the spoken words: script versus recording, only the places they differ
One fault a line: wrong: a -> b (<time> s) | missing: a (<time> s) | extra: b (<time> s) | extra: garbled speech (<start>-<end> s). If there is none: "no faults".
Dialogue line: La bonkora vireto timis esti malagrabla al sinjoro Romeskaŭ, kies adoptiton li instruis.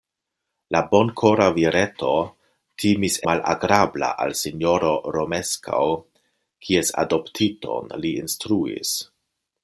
missing: esti (3.2 s)